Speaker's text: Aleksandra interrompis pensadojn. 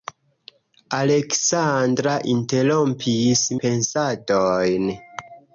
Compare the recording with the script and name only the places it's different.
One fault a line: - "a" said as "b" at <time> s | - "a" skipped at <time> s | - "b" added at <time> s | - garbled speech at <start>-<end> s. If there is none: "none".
none